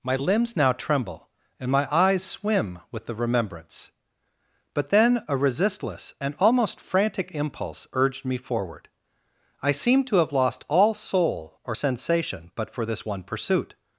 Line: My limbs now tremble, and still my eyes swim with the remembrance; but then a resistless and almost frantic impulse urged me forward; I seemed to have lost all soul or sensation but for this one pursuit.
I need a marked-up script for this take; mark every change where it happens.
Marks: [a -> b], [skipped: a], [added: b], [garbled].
My limbs now tremble, and [skipped: still] my eyes swim with the remembrance; but then a resistless and almost frantic impulse urged me forward; I seemed to have lost all soul or sensation but for this one pursuit.